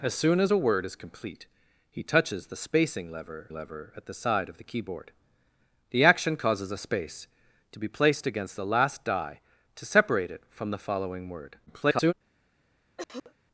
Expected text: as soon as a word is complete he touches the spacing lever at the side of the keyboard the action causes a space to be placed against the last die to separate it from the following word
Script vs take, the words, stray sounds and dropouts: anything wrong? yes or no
yes